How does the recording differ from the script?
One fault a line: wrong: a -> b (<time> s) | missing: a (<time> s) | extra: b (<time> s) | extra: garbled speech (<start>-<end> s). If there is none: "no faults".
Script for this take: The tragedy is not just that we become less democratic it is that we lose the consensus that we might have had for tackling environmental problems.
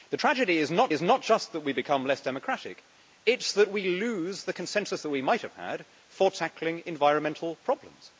extra: is not (0.9 s)